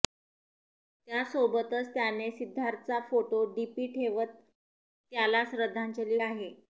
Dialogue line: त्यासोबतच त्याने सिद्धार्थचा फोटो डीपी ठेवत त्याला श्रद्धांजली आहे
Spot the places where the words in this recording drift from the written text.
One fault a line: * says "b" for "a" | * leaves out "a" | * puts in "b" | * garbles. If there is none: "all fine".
all fine